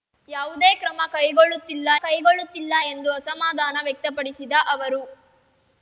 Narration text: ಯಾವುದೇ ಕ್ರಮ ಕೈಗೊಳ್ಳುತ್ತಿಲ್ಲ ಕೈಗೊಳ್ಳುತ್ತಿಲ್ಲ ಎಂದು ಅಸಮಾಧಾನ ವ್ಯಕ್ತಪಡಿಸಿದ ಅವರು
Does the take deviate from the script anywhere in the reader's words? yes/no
no